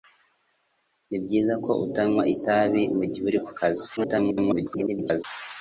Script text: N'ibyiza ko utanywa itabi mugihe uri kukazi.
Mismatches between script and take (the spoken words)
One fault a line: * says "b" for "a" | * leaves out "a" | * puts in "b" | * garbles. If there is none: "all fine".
* garbles